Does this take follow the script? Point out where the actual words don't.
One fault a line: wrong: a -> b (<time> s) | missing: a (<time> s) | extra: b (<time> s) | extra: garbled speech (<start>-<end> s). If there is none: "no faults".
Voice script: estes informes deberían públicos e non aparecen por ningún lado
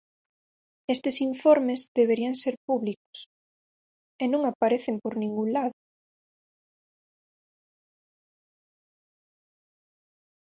extra: ser (2.4 s)